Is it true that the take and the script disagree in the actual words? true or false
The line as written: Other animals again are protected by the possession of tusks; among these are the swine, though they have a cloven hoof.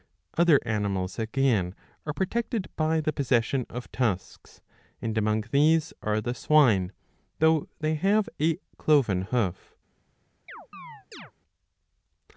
true